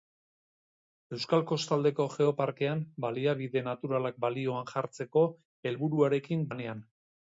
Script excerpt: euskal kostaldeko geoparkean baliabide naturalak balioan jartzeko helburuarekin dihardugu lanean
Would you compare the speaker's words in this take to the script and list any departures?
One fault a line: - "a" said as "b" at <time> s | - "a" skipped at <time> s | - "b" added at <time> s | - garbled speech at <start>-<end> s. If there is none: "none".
- "dihardugu" skipped at 6.5 s